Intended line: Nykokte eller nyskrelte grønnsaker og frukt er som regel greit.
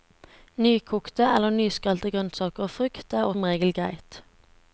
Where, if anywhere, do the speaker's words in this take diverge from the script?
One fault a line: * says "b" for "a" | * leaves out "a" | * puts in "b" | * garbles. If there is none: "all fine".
all fine